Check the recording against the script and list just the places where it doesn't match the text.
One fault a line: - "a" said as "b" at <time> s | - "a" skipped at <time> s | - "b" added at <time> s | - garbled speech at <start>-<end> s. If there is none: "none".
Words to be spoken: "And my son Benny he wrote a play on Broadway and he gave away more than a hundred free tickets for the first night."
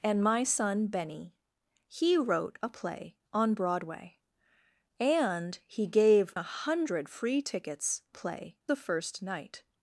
- "away more than" skipped at 6.3 s
- "for" said as "play" at 8.1 s